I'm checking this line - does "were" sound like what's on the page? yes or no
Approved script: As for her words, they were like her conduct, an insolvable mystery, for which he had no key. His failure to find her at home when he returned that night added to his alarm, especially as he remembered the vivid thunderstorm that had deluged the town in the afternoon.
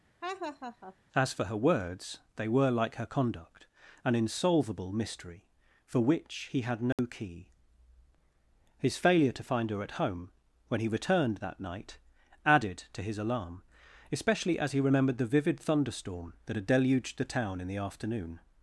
yes